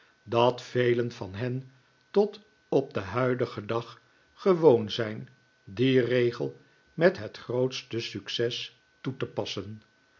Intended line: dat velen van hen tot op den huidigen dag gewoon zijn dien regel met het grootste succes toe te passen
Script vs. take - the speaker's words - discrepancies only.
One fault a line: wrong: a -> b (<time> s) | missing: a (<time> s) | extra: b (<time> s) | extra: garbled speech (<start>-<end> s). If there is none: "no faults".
no faults